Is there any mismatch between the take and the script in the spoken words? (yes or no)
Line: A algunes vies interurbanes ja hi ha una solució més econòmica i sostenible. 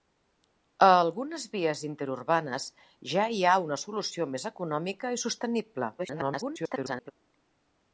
yes